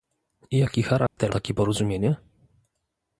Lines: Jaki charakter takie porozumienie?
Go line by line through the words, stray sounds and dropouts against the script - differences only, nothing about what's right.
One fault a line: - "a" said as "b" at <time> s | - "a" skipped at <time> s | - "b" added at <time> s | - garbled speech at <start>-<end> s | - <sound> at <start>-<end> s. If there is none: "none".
- dropout at 1.1-1.2 s